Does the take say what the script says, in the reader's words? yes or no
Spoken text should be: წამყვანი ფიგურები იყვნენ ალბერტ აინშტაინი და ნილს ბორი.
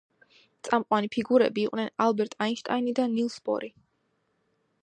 yes